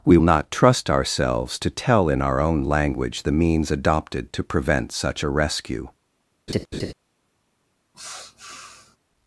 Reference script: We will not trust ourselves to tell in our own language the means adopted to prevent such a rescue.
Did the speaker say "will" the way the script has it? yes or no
no